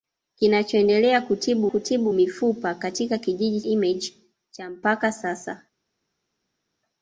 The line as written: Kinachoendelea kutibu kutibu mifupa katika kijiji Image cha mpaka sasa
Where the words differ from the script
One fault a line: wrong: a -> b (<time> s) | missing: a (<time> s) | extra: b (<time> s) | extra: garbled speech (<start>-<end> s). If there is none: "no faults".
no faults